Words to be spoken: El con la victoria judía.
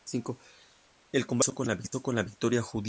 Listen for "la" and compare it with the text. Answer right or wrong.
right